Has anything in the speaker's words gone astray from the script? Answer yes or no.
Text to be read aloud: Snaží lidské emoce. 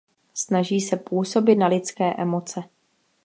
yes